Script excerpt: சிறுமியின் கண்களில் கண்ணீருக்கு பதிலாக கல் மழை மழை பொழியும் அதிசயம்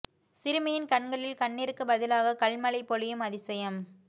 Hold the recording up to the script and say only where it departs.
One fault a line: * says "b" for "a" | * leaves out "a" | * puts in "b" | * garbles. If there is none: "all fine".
* leaves out "மழை"